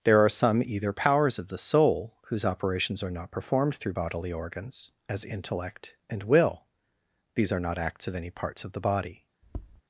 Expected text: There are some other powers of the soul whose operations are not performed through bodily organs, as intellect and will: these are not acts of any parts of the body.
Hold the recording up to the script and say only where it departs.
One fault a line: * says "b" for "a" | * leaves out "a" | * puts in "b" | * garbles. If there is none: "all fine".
* says "either" for "other"